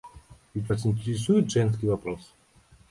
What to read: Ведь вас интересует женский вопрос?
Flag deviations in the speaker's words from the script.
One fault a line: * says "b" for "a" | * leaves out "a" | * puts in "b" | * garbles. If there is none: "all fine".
all fine